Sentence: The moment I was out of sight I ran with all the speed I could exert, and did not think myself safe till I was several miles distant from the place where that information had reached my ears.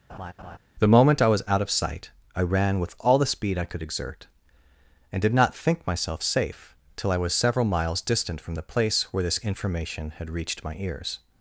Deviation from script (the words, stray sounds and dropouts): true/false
true